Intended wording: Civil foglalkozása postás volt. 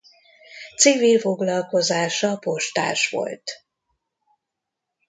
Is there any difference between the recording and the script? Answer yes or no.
no